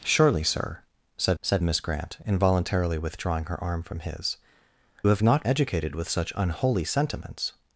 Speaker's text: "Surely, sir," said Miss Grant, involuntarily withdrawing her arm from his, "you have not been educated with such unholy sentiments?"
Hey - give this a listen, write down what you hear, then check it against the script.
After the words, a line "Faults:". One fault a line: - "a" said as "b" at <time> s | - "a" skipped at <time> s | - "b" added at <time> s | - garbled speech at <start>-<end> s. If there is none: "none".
"Surely, sir," said said Miss Grant, involuntarily withdrawing her arm from his, "have not educated with such unholy sentiments?"
Faults:
- "said" added at 1.4 s
- "you" skipped at 4.4 s
- "been" skipped at 5.4 s